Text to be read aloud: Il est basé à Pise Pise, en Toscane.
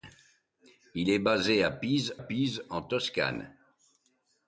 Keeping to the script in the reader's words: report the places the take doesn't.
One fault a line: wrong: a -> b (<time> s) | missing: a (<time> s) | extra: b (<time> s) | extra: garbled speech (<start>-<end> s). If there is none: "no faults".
no faults